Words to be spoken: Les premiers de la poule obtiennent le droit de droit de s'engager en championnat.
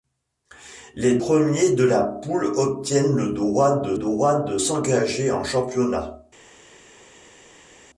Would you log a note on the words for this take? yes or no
no